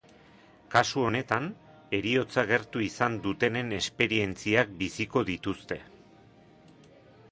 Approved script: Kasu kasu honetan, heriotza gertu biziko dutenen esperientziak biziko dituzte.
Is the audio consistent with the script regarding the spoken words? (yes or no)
no